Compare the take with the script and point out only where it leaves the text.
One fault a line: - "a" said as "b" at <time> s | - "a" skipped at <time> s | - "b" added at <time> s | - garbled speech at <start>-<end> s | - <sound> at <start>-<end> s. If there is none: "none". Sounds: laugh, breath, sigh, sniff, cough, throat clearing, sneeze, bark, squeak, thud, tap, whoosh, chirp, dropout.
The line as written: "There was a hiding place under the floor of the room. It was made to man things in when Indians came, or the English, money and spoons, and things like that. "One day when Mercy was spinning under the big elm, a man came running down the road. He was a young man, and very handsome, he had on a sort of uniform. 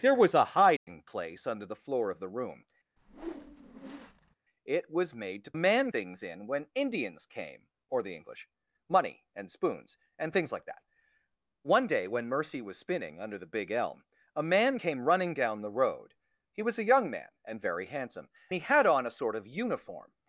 - dropout at 0.8-0.9 s
- whoosh at 3.0-4.4 s